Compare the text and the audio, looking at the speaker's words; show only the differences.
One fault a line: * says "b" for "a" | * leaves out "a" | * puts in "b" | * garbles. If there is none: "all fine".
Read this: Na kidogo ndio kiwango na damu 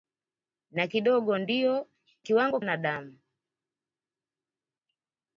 all fine